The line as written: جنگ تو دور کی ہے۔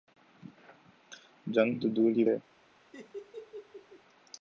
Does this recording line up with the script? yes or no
yes